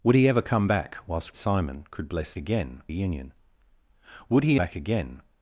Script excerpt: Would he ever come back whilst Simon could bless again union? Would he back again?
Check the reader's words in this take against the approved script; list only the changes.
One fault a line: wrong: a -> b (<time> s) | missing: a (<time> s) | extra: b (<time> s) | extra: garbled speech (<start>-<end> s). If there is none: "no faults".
no faults